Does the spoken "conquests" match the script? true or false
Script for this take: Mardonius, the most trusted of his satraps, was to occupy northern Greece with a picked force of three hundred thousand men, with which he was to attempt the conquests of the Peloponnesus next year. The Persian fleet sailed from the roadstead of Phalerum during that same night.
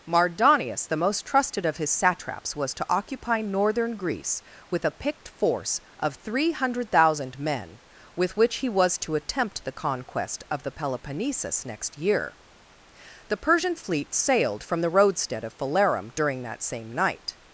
false